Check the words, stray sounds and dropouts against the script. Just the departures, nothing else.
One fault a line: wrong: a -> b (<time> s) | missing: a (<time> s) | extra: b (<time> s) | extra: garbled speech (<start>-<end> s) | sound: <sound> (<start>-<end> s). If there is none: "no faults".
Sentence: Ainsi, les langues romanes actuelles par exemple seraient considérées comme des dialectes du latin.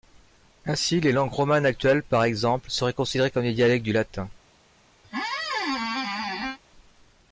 sound: squeak (5.0-6.6 s)